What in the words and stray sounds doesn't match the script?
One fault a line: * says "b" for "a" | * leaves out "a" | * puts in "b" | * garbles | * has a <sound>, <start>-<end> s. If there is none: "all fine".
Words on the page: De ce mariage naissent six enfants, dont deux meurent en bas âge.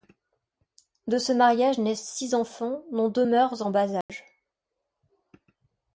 * has a dropout, 4.0-4.1 s